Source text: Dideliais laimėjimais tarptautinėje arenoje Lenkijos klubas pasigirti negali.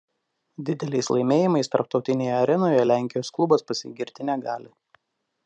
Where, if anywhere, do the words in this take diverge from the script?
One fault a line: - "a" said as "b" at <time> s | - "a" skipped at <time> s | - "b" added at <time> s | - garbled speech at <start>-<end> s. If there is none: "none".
none